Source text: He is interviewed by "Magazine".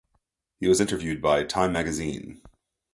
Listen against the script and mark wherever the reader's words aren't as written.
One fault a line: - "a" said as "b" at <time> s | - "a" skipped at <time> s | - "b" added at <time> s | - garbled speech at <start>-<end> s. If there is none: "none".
- "is" said as "was" at 0.7 s
- "Time" added at 1.4 s